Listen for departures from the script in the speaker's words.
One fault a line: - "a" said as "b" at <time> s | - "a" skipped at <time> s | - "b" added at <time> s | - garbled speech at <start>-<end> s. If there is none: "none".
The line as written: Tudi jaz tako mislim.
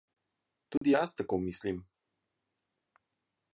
none